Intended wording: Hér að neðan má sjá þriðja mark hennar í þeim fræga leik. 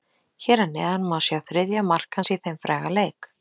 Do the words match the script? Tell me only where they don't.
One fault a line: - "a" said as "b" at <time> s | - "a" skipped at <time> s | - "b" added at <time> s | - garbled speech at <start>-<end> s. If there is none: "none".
- "hennar" said as "hans" at 2.2 s